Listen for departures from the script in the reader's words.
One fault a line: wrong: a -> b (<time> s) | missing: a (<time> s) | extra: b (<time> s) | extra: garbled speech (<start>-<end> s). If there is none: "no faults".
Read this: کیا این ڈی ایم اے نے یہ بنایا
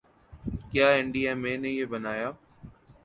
no faults